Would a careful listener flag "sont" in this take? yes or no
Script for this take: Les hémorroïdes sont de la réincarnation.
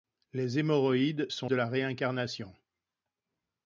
no